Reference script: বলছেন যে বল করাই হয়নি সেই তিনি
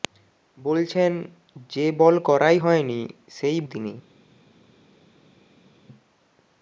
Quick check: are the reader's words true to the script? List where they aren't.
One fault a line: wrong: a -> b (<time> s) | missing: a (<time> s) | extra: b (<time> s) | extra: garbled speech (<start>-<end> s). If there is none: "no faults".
no faults